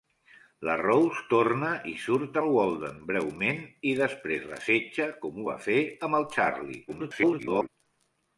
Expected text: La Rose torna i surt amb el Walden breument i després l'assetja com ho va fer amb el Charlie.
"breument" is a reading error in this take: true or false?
false